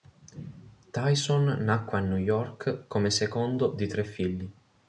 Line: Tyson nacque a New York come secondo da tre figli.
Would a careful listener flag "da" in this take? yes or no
yes